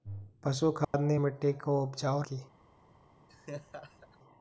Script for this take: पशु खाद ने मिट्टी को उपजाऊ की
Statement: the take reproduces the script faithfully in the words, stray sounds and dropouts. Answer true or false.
false